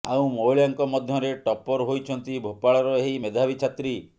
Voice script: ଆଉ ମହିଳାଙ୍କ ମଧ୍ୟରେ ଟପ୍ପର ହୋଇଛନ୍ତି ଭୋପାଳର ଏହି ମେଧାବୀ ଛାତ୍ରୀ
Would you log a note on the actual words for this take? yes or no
no